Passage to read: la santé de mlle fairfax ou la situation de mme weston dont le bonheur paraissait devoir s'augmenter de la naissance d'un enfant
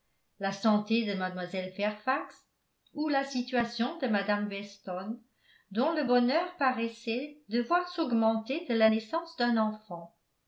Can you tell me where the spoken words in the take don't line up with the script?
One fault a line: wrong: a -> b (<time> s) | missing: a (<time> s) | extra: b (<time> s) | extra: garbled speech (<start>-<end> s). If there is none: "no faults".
no faults